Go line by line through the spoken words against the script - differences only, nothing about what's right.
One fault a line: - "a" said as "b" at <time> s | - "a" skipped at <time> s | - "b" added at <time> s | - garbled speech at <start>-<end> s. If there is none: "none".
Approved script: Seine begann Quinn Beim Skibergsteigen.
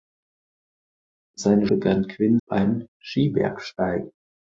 none